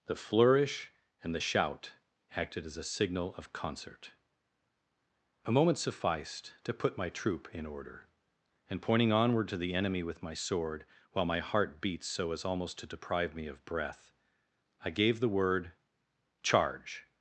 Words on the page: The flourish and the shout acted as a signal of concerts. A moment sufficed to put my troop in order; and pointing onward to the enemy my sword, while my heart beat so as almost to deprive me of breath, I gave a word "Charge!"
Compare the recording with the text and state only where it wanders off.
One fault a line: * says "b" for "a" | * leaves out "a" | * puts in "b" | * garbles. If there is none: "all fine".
* says "concert" for "concerts"
* puts in "with"
* says "the" for "a"